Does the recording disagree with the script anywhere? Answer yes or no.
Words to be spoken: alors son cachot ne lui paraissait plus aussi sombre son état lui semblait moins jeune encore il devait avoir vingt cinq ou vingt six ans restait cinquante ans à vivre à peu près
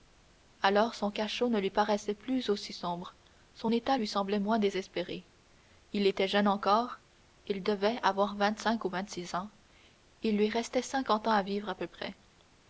yes